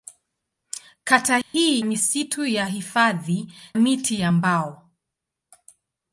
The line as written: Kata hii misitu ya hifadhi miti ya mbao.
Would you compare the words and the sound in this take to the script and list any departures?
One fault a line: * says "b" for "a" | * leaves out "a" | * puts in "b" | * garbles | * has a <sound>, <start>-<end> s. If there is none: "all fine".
* has a dropout, 1.4-1.5 s